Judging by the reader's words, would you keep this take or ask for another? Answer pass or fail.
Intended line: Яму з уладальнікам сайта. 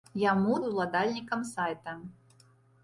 pass